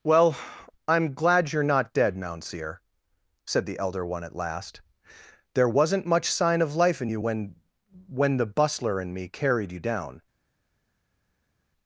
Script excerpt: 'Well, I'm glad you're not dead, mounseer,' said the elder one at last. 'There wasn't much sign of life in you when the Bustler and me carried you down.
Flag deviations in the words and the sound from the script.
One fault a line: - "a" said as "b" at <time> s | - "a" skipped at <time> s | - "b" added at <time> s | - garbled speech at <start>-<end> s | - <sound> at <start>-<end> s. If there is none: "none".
- "when" added at 8.1 s